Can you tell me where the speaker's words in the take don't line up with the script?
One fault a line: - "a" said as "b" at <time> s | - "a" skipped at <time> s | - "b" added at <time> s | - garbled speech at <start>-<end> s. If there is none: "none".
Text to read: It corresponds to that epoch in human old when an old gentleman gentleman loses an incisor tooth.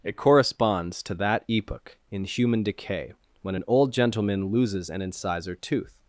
- "old" said as "decay" at 2.6 s
- "gentleman" skipped at 4.5 s